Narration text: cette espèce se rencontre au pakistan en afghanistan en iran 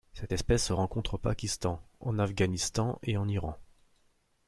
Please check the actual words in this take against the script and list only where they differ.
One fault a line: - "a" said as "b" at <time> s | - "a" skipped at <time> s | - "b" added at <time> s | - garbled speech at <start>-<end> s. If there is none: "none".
- "et" added at 3.0 s